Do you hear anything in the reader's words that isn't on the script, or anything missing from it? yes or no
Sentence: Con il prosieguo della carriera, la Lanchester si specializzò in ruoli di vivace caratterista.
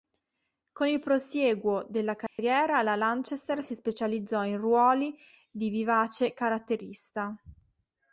no